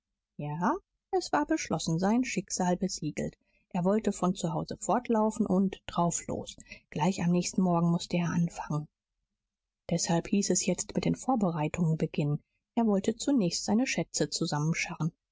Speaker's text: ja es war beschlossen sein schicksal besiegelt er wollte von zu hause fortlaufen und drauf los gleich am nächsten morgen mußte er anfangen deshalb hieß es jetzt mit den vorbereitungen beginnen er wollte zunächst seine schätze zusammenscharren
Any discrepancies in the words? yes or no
no